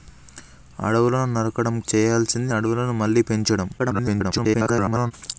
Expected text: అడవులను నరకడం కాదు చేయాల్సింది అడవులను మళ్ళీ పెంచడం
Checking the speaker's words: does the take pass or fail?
fail